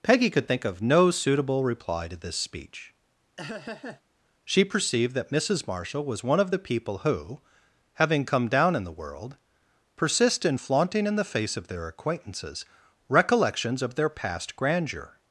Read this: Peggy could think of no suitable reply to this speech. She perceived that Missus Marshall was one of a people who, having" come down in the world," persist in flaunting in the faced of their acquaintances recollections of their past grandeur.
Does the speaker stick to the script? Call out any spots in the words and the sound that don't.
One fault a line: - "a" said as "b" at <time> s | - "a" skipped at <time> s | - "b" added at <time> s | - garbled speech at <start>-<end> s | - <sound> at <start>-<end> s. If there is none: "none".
- laugh at 3.4-4.0 s
- "a" said as "the" at 6.5 s
- "faced" said as "face" at 11.2 s